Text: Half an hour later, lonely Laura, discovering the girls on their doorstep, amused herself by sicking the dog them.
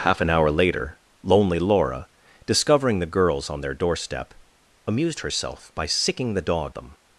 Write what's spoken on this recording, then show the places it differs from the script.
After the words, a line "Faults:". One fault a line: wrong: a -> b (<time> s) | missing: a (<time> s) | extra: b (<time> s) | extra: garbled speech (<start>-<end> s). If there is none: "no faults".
Half an hour later, lonely Laura, discovering the girls on their doorstep, amused herself by sicking the dog them.
Faults:
no faults